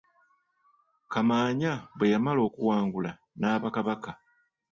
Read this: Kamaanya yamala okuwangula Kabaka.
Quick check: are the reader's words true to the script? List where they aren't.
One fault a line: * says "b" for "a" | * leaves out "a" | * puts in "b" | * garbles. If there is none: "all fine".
* puts in "bwe"
* puts in "n'aba"